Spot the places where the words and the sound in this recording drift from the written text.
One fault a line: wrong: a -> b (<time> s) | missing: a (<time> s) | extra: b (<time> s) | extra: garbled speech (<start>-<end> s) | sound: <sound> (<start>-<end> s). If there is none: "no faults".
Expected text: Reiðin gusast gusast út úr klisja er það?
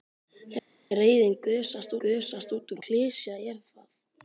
no faults